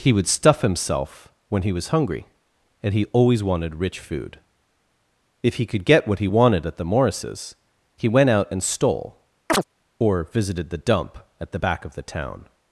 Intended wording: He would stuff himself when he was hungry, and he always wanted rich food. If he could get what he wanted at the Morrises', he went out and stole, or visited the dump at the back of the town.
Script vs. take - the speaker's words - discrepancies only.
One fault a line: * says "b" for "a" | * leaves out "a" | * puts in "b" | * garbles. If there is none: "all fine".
all fine